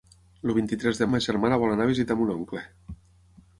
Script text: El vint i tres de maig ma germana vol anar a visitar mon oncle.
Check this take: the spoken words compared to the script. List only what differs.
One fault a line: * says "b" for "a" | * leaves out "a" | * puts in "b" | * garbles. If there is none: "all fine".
* leaves out "maig"